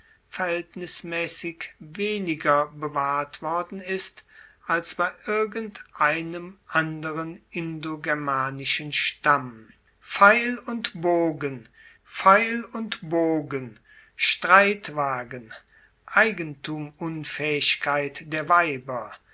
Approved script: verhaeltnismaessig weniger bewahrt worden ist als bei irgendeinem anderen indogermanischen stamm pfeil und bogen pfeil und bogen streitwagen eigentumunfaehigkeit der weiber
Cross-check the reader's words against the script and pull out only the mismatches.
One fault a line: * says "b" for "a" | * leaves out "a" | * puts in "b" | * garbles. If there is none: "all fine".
all fine